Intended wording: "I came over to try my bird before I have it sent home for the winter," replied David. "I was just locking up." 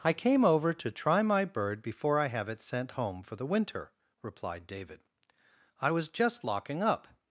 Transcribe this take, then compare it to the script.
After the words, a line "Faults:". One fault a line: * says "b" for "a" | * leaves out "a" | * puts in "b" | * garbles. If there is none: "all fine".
"I came over to try my bird before I have it sent home for the winter," replied David. "I was just locking up."
Faults:
all fine